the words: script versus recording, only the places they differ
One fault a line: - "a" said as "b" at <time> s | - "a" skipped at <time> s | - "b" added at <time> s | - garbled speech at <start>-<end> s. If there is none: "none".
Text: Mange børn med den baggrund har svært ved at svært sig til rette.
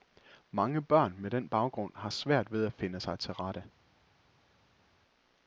- "svært" said as "finde" at 2.7 s